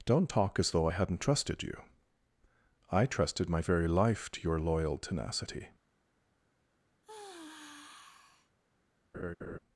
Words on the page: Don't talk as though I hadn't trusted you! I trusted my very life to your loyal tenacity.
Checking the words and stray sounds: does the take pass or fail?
fail